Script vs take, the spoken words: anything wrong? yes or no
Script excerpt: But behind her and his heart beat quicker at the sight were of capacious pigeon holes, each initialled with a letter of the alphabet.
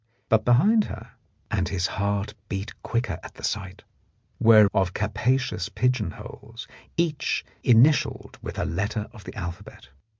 no